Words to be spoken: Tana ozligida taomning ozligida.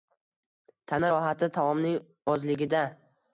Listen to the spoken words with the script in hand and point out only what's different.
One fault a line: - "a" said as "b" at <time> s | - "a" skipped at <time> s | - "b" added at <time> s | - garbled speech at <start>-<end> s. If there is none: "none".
- "ozligida" said as "rohati" at 1.1 s